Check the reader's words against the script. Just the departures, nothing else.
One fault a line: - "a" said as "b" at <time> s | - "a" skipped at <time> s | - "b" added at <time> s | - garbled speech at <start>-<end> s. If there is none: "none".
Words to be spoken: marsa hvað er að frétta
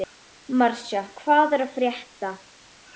none